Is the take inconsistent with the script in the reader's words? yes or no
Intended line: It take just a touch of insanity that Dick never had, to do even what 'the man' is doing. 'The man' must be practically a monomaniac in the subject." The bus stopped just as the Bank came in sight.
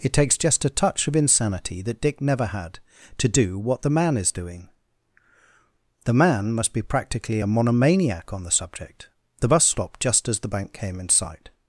yes